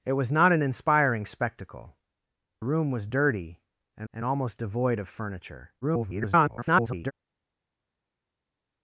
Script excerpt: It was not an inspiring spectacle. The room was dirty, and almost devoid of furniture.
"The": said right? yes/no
no